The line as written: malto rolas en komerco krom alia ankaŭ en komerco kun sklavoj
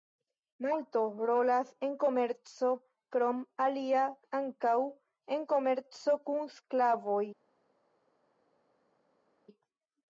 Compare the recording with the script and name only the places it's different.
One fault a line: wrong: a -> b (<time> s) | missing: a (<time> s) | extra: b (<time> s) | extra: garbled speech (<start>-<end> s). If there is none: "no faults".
no faults